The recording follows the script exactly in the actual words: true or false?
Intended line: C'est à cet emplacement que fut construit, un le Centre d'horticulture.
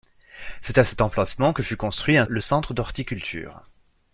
true